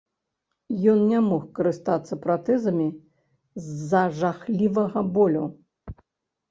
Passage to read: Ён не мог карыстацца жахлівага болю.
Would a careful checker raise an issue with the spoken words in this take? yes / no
yes